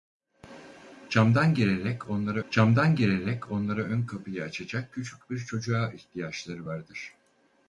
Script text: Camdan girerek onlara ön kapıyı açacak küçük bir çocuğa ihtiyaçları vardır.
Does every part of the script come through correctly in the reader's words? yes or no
no